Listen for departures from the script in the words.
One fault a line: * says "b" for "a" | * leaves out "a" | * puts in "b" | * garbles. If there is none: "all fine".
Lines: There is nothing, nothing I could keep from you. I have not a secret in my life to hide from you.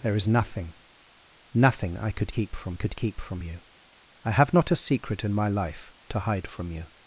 * puts in "could keep from"